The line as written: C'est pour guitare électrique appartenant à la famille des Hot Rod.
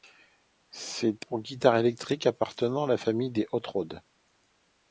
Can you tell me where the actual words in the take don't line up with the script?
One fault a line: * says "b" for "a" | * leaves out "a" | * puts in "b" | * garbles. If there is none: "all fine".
all fine